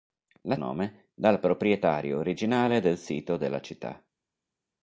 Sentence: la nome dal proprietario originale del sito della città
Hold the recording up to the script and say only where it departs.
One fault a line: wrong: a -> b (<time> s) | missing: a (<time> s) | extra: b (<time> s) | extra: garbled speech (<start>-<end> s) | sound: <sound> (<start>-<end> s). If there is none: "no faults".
no faults